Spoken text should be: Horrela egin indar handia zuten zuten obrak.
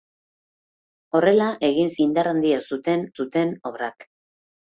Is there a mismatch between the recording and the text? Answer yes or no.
no